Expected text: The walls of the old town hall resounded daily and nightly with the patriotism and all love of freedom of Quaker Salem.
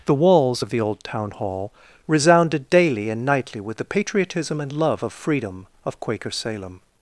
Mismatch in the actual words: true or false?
true